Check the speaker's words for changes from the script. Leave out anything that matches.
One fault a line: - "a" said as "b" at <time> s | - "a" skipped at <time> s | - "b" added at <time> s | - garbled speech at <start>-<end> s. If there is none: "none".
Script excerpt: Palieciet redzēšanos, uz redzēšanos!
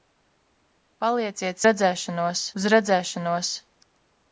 none